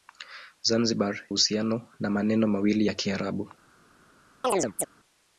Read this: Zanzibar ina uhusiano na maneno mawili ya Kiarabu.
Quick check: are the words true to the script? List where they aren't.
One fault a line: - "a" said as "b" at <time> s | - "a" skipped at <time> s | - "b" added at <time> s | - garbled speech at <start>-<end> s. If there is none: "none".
- "ina" skipped at 1.3 s